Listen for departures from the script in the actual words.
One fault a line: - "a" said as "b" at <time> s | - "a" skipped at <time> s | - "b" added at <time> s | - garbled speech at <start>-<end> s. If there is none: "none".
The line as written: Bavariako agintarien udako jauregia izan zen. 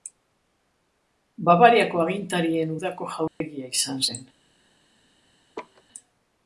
none